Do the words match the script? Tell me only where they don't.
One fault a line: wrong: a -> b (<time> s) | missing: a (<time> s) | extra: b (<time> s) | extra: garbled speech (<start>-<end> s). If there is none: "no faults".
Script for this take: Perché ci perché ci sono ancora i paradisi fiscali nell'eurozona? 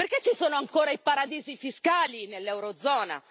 missing: perché ci (0.3 s)